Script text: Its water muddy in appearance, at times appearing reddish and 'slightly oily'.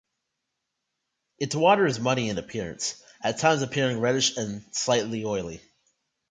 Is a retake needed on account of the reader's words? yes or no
yes